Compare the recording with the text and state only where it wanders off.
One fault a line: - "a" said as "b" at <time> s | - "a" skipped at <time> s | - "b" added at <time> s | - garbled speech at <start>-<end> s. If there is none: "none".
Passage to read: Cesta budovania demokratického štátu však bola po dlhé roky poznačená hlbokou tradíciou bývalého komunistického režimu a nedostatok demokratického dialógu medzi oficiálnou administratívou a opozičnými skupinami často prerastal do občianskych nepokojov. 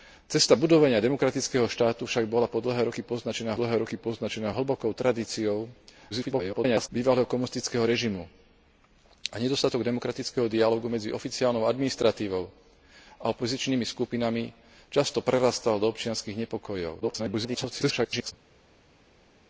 - "dlhé roky poznačená" added at 3.6 s
- garbled speech at 6.1-6.9 s
- garbled speech at 17.0-18.3 s